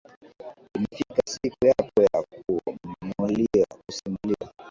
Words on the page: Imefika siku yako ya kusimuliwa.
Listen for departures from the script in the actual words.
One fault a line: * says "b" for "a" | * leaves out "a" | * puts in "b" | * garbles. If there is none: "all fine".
all fine